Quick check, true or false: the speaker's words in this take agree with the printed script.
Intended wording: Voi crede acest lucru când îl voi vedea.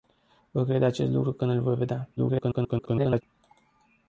false